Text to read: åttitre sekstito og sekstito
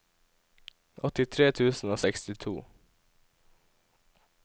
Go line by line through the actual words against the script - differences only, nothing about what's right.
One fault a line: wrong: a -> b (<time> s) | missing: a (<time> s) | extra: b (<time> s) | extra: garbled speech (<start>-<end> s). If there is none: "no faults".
wrong: sekstito -> tusen (1.5 s)